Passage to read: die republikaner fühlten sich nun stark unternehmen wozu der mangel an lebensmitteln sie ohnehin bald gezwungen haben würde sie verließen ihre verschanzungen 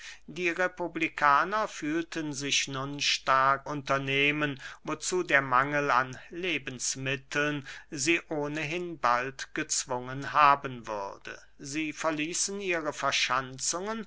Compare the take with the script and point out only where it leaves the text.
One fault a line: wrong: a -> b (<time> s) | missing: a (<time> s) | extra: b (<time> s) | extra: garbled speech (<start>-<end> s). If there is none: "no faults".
no faults